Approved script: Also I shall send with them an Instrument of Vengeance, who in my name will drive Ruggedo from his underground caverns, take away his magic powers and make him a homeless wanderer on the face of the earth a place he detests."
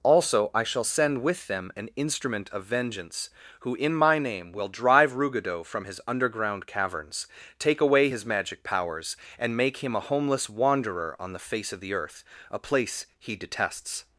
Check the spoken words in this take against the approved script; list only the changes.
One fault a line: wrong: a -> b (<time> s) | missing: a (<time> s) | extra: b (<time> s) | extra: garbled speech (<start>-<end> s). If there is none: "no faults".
no faults